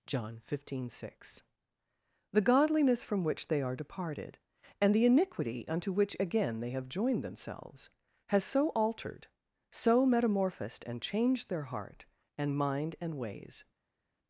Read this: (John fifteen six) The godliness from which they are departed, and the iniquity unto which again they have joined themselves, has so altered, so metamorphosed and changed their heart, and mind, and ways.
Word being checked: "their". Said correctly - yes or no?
yes